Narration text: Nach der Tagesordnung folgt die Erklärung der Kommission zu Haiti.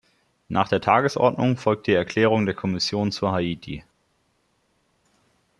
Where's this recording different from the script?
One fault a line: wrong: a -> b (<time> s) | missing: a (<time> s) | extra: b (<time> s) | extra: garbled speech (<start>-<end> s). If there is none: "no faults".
no faults